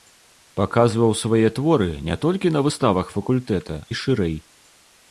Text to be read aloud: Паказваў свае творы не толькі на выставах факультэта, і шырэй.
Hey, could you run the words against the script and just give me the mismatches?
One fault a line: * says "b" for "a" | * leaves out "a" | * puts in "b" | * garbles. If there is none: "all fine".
all fine